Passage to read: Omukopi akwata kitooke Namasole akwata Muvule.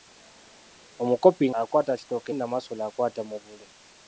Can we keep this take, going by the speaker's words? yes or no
yes